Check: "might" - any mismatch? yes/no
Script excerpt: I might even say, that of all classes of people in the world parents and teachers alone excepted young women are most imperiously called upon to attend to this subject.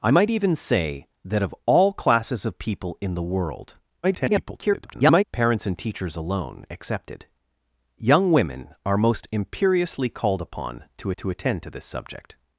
no